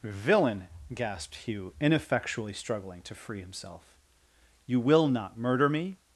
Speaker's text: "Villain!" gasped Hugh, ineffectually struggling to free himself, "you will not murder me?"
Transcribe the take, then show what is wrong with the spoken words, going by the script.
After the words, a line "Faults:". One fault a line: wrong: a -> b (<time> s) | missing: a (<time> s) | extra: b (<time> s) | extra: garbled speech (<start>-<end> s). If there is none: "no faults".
"Villain!" gasped Hugh, ineffectually struggling to free himself, "you will not murder me?"
Faults:
no faults